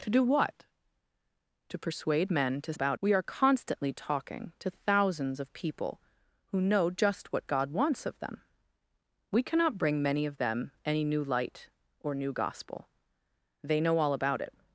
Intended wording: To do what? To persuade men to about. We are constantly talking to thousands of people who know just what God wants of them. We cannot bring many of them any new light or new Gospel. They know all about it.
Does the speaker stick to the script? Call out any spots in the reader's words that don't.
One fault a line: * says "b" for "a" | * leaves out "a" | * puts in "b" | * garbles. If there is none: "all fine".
all fine